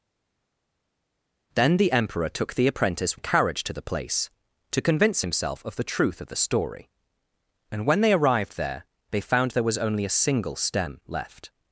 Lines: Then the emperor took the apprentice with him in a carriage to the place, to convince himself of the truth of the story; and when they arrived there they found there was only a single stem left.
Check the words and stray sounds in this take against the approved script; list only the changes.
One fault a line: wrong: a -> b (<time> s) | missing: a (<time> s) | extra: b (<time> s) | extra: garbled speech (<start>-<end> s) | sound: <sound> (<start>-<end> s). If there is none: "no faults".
missing: with him in (3.2 s)